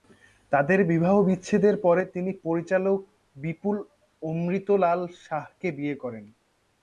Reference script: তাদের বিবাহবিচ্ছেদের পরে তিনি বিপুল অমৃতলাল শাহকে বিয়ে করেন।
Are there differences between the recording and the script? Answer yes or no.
yes